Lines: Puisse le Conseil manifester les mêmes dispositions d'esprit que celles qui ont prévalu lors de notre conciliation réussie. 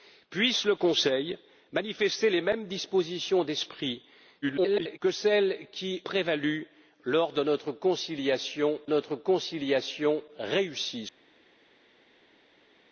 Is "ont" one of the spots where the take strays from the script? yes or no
yes